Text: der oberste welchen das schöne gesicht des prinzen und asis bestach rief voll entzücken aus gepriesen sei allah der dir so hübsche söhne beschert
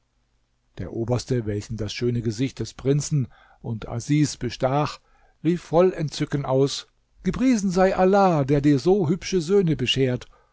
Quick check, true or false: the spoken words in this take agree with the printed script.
true